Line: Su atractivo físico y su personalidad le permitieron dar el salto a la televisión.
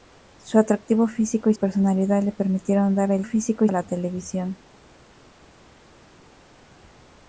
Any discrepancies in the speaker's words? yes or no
yes